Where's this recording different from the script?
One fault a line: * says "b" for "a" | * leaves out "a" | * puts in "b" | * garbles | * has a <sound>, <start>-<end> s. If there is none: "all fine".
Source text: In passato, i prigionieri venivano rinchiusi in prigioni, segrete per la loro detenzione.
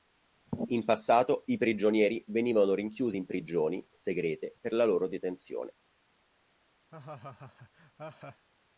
* has a laugh, 6.9-8.5 s